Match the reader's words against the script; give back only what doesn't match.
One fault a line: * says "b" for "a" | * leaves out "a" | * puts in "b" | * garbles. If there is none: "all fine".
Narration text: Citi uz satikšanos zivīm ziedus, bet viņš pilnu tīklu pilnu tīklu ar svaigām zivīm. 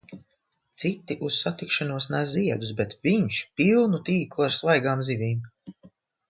* says "nes" for "zivīm"
* leaves out "pilnu tīklu"